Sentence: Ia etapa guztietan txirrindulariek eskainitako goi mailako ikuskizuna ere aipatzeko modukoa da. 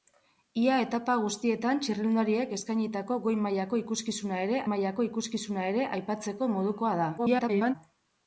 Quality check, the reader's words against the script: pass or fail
fail